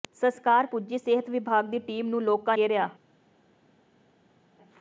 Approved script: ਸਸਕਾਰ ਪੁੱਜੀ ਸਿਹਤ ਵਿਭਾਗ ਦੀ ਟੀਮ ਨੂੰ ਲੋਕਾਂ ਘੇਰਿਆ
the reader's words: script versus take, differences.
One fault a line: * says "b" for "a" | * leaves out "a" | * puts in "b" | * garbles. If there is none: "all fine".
all fine